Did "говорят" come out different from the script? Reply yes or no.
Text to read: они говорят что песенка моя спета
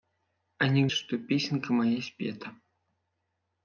yes